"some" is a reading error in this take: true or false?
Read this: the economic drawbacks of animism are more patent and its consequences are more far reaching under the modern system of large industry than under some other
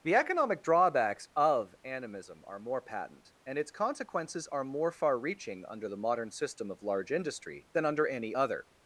true